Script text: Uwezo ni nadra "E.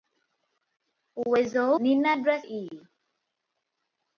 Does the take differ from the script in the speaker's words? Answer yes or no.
no